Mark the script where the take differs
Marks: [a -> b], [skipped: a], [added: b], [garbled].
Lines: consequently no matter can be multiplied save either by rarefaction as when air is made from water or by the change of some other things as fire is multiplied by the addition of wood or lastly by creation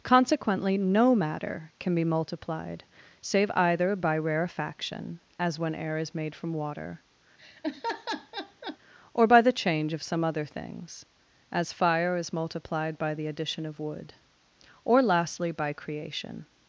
consequently no matter can be multiplied save either by rarefaction as when air is made from water or by the change of some other things as fire is multiplied by the addition of wood or lastly by creation